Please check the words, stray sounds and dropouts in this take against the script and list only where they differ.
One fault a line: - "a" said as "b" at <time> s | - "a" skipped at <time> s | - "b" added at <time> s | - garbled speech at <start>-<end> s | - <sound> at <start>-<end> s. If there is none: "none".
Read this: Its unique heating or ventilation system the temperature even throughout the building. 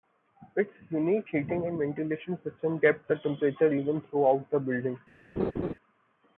- "or" said as "and" at 1.6 s
- "kept" added at 2.8 s
- laugh at 5.4-5.7 s